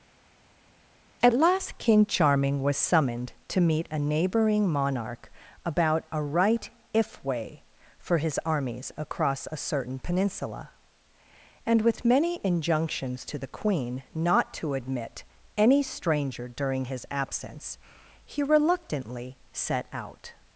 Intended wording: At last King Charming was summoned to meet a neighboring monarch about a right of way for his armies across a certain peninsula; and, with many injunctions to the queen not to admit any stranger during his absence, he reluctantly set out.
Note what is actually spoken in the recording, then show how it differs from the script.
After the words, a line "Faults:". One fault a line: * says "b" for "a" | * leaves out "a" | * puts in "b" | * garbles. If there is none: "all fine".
At last King Charming was summoned to meet a neighboring monarch about a right if way for his armies across a certain peninsula; and, with many injunctions to the queen not to admit any stranger during his absence, he reluctantly set out.
Faults:
* says "if" for "of"